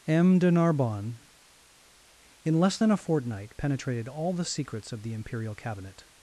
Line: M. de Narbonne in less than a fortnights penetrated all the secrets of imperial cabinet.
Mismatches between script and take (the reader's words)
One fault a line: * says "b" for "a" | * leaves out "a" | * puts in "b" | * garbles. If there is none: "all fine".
* says "fortnight" for "fortnights"
* puts in "the"